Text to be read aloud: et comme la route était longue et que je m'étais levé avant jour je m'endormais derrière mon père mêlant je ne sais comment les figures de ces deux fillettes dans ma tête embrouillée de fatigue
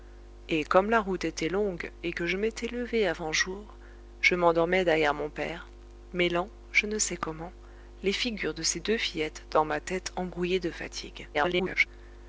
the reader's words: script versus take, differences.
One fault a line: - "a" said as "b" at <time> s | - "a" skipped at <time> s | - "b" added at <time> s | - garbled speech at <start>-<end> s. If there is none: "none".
- garbled speech at 11.3-11.9 s